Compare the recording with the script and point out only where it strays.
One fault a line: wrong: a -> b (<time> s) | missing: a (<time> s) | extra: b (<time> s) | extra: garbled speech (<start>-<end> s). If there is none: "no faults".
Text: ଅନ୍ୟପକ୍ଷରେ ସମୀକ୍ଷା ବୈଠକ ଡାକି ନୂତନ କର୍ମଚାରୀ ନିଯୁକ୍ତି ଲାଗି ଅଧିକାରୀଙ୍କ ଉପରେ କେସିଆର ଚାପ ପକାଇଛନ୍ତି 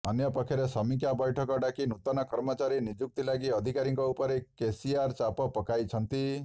no faults